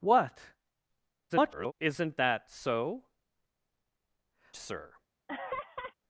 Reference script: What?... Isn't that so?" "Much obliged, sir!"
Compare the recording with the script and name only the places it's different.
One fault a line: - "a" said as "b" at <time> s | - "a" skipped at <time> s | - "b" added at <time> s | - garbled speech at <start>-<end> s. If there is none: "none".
- garbled speech at 1.3-1.7 s
- "Much obliged" skipped at 3.1 s